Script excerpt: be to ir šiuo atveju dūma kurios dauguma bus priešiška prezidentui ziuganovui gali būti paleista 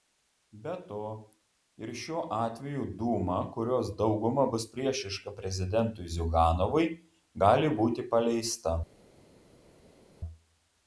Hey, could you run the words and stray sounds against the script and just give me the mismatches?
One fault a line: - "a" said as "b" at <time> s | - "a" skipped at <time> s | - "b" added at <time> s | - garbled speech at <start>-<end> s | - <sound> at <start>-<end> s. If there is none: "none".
none